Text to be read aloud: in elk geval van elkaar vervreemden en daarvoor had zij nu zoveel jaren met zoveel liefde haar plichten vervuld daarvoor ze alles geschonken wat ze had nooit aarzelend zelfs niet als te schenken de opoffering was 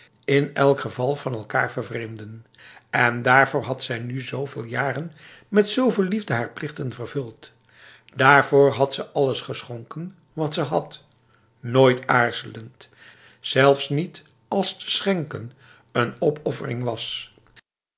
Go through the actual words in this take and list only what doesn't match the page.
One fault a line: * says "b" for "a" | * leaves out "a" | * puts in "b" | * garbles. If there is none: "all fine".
* puts in "had"
* says "een" for "de"